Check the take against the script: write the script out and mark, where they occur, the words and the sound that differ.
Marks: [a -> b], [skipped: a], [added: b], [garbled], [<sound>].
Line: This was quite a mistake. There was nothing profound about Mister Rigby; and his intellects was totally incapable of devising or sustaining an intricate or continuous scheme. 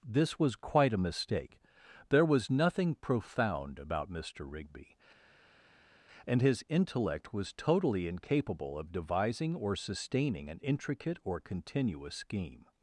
This was quite a mistake. There was nothing profound about Mister Rigby; and his [intellects -> intellect] was totally incapable of devising or sustaining an intricate or continuous scheme.